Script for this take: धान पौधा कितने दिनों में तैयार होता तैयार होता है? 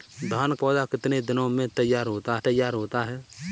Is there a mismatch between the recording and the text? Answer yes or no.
no